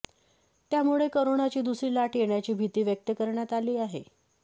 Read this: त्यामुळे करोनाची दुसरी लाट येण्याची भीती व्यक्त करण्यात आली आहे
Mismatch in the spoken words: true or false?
false